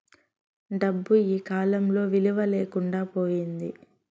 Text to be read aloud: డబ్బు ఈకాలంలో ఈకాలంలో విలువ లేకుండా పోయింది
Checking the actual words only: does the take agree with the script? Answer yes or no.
no